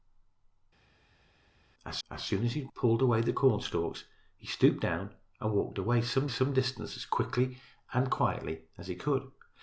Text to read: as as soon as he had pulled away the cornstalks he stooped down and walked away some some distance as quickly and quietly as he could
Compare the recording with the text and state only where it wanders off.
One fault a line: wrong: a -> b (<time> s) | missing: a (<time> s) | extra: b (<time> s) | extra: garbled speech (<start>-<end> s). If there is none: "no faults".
no faults